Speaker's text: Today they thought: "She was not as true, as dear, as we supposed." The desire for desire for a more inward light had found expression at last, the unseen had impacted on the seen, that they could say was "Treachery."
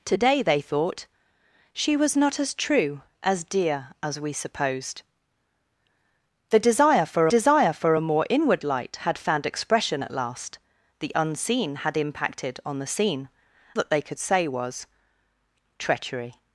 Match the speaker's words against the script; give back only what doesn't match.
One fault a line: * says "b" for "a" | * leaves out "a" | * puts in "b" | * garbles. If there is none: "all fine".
all fine